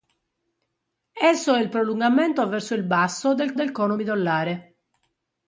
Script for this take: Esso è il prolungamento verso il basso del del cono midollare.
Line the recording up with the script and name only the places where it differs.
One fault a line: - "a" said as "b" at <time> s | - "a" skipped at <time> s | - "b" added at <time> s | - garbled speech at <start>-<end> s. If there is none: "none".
none